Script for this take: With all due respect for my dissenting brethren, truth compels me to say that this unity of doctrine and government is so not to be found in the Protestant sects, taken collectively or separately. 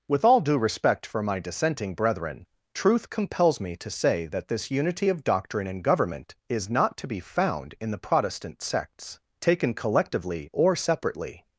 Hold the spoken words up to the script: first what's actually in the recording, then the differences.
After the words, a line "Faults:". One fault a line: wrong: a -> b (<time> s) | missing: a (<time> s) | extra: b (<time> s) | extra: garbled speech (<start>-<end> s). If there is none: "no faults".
With all due respect for my dissenting brethren, truth compels me to say that this unity of doctrine and government is not to be found in the Protestant sects, taken collectively or separately.
Faults:
missing: so (6.7 s)